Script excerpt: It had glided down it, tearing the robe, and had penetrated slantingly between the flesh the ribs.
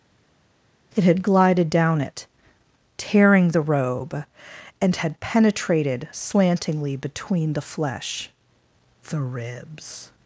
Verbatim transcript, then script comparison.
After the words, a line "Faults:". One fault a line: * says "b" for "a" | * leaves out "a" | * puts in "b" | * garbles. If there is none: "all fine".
It had glided down it, tearing the robe, and had penetrated slantingly between the flesh the ribs.
Faults:
all fine